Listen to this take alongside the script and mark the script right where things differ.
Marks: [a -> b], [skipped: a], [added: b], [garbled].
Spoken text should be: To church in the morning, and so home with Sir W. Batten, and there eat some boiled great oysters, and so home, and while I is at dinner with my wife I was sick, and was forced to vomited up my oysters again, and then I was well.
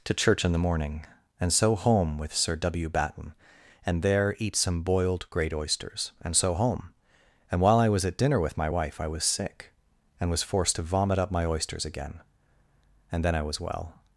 To church in the morning, and so home with Sir W. Batten, and there eat some boiled great oysters, and so home, and while I [is -> was] at dinner with my wife I was sick, and was forced to [vomited -> vomit] up my oysters again, and then I was well.